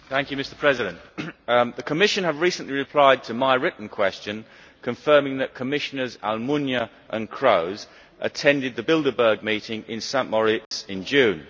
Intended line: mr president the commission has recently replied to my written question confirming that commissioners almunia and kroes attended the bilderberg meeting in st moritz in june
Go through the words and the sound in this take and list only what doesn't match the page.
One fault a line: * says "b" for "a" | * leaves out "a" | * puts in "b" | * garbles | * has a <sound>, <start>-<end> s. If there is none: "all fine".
* has a dropout, 10.7-10.7 s